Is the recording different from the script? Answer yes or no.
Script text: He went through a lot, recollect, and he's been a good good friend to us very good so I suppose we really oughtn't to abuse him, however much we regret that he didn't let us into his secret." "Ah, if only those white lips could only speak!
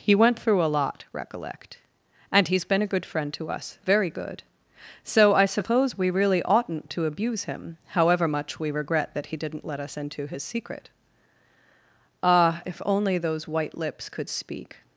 yes